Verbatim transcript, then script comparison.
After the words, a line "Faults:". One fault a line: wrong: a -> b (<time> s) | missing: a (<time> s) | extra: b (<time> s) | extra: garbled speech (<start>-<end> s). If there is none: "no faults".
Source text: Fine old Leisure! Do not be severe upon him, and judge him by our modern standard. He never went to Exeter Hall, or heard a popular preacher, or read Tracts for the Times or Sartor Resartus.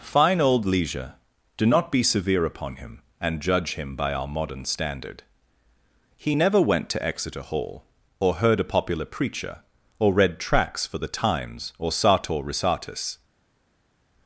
Fine old Leisure! Do not be severe upon him, and judge him by our modern standard. He never went to Exeter Hall, or heard a popular preacher, or read Tracts for the Times or Sartor Resartus.
Faults:
no faults